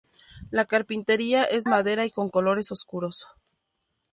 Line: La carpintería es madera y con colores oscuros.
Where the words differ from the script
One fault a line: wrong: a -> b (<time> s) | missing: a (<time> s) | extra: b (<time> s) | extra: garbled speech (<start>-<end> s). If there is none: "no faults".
no faults